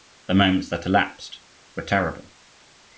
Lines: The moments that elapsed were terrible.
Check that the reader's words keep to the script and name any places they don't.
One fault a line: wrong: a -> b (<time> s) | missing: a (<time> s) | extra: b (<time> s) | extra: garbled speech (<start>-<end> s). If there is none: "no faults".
no faults